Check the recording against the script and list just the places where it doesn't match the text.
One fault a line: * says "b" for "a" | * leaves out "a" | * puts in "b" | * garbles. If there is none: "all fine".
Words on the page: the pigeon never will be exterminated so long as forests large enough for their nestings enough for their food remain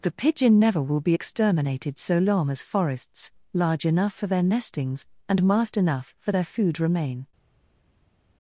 * puts in "and mast"